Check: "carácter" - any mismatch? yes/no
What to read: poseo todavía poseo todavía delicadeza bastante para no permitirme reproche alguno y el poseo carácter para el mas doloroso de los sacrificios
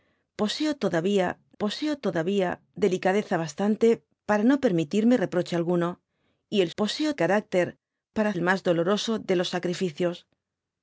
no